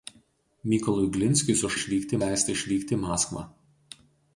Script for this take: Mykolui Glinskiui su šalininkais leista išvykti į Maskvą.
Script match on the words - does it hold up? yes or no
no